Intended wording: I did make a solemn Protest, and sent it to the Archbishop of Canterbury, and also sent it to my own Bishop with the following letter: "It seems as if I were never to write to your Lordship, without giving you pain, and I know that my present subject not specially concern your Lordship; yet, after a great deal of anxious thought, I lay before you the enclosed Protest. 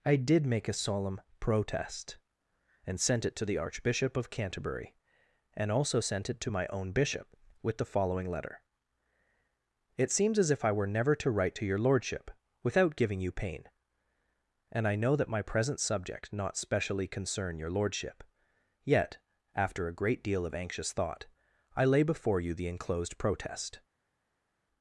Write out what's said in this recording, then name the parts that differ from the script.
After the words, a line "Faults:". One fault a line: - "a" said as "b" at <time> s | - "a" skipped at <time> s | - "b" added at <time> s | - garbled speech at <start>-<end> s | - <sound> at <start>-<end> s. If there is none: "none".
I did make a solemn Protest, and sent it to the Archbishop of Canterbury, and also sent it to my own Bishop with the following letter: "It seems as if I were never to write to your Lordship, without giving you pain, and I know that my present subject not specially concern your Lordship; yet, after a great deal of anxious thought, I lay before you the enclosed Protest.
Faults:
none